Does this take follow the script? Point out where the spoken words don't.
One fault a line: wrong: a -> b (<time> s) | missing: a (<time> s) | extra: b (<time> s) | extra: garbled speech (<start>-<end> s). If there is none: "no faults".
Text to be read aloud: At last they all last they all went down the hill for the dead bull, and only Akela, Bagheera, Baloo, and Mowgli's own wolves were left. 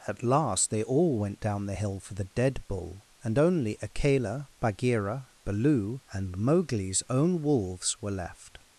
missing: last they all (1.2 s)